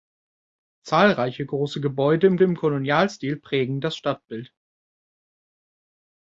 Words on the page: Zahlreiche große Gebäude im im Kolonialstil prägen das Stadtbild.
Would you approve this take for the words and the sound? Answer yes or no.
yes